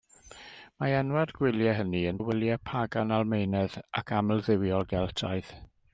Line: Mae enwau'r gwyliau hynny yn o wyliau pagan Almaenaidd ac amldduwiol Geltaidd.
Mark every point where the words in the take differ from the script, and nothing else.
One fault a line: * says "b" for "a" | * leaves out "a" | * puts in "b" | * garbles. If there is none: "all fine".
all fine